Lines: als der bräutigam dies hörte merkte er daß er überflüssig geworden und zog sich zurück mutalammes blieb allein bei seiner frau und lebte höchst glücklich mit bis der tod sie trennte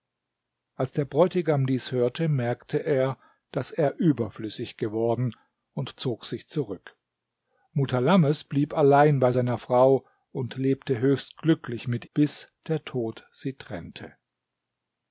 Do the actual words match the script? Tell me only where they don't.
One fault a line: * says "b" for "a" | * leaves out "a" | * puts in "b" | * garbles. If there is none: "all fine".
all fine